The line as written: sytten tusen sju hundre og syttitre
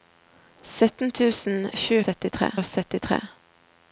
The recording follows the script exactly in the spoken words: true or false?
false